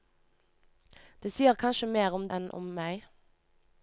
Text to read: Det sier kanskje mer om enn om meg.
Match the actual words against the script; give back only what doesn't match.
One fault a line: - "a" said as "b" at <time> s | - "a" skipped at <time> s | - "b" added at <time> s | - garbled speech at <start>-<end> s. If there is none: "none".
none